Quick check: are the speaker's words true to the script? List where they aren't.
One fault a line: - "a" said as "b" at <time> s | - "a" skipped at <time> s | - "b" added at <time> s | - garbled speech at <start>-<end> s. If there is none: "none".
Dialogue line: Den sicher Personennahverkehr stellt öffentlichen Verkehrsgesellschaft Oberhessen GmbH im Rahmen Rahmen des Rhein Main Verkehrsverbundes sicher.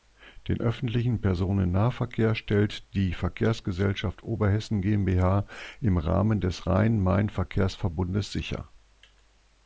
- "sicher" said as "öffentlichen" at 0.6 s
- "öffentlichen" said as "die" at 2.9 s
- "Rahmen" skipped at 6.4 s